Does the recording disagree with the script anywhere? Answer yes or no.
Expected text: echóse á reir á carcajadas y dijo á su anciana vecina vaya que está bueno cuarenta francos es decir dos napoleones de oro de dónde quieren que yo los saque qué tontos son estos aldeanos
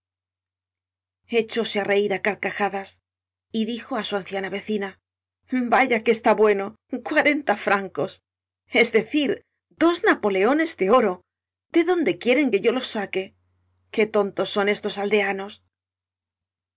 no